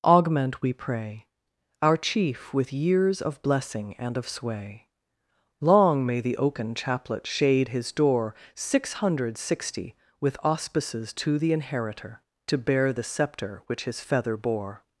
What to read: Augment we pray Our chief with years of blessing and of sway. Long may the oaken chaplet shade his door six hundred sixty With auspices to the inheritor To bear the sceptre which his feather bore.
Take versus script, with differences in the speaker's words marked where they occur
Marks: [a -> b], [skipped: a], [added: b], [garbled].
Augment we pray Our chief with years of blessing and of sway. Long may the oaken chaplet shade his door six hundred sixty With auspices to the inheritor To bear the sceptre which his feather bore.